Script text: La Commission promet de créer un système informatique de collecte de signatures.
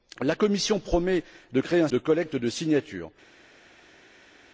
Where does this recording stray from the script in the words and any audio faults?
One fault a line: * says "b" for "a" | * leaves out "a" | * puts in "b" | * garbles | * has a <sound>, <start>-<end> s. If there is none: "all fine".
* leaves out "système informatique"